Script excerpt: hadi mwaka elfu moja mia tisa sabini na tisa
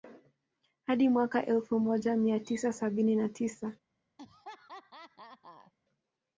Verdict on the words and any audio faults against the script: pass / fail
fail